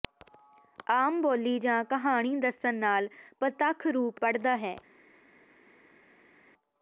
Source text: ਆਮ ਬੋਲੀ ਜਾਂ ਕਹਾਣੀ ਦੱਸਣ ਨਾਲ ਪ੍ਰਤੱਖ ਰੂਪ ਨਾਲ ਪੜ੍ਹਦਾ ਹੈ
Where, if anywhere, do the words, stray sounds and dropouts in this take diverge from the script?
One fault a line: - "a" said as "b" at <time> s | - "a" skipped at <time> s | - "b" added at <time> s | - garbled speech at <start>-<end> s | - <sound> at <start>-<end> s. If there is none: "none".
- "ਨਾਲ" skipped at 4.2 s